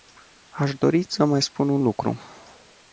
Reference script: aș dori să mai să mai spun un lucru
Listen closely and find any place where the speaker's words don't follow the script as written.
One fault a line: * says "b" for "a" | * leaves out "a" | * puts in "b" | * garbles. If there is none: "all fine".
* leaves out "să mai"